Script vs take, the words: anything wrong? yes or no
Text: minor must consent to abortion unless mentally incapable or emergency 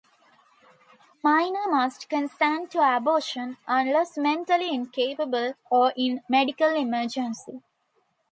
yes